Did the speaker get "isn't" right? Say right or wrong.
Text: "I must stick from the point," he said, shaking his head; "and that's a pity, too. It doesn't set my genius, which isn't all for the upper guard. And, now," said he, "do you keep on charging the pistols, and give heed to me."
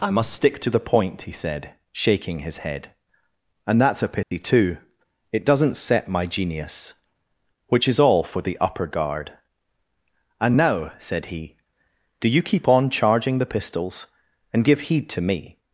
wrong